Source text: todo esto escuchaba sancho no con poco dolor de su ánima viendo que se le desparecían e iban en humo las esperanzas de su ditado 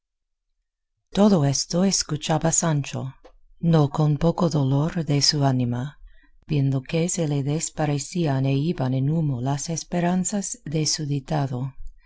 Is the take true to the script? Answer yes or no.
yes